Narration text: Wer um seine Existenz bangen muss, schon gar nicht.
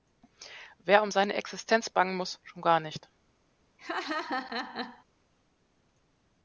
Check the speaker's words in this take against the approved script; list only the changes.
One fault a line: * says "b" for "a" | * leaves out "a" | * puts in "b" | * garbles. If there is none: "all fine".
all fine